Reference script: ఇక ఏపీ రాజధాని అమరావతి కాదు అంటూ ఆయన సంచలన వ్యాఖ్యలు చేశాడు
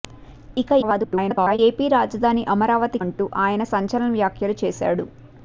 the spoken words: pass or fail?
fail